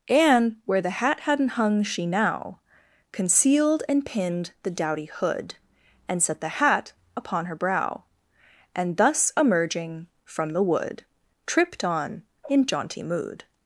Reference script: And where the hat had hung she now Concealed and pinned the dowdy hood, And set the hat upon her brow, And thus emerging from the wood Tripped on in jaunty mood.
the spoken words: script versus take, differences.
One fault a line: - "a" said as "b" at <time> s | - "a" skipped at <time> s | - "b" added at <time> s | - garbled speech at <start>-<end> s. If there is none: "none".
- "had" said as "hadn't" at 1.2 s